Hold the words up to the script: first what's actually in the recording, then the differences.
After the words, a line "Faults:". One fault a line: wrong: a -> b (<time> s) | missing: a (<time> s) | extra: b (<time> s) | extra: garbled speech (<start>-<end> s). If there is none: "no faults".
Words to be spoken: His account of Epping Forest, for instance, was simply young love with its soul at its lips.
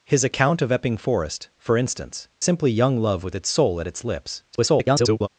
His account of Epping Forest, for instance, simply young love with its soul at its lips. [garbled]
Faults:
missing: was (2.3 s)
extra: garbled speech (4.5-5.3 s)